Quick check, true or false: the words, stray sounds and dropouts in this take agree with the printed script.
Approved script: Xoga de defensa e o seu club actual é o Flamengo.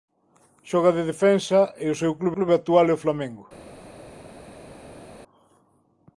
false